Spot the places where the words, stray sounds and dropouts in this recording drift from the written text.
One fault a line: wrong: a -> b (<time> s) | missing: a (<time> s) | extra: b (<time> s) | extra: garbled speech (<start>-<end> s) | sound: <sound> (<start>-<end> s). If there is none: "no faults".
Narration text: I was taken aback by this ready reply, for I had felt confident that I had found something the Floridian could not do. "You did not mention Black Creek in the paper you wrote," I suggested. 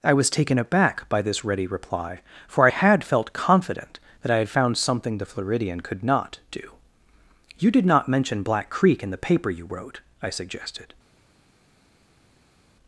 no faults